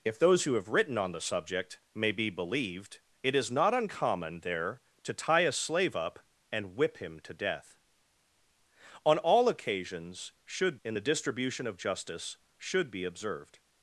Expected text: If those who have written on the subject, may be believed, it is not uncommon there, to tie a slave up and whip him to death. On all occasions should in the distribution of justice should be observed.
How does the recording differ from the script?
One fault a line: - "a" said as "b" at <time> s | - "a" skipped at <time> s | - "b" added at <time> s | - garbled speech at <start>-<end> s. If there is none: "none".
none